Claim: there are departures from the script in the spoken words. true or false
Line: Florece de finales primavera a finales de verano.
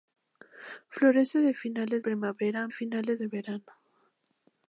false